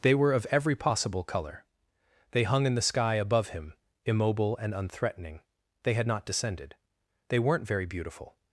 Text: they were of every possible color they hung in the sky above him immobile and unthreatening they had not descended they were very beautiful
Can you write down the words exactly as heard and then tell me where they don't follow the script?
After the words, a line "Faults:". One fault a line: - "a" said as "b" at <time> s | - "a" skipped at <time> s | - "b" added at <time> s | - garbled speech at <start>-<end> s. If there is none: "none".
they were of every possible color they hung in the sky above him immobile and unthreatening they had not descended they weren't very beautiful
Faults:
- "were" said as "weren't" at 7.4 s